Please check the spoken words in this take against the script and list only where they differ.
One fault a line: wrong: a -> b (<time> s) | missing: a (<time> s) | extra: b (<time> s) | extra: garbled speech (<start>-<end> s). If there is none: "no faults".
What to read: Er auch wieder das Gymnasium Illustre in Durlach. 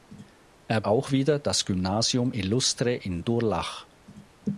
no faults